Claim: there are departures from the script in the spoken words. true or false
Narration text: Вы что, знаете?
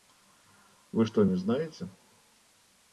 true